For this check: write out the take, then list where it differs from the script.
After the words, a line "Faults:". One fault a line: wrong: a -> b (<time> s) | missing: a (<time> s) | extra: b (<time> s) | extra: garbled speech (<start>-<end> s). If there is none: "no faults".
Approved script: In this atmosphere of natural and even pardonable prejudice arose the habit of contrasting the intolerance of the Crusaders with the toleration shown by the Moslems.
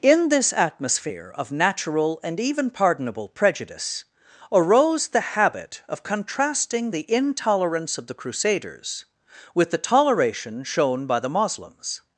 In this atmosphere of natural and even pardonable prejudice arose the habit of contrasting the intolerance of the Crusaders with the toleration shown by the Moslems.
Faults:
no faults